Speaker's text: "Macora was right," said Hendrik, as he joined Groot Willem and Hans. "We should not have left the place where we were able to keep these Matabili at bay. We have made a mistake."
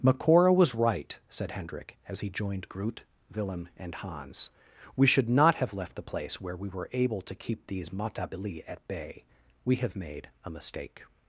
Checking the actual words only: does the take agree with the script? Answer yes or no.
yes